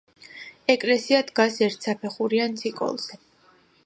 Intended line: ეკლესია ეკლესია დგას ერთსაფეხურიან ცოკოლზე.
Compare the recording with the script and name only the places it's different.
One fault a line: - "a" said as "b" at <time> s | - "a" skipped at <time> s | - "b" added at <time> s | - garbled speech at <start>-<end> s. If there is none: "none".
- "ეკლესია" skipped at 1.2 s